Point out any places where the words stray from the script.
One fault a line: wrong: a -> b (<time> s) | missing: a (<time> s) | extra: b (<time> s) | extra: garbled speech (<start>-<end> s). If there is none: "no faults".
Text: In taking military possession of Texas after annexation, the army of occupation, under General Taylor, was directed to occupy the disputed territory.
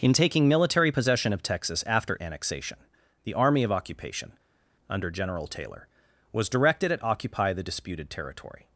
wrong: to -> at (6.9 s)